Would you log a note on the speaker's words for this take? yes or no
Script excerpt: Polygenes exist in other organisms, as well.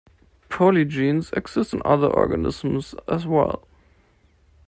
no